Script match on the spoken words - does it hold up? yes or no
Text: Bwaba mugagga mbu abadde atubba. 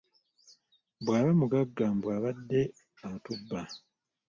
yes